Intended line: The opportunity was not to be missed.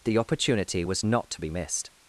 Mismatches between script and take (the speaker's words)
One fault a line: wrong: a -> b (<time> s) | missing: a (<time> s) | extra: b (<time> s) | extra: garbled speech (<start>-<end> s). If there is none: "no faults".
no faults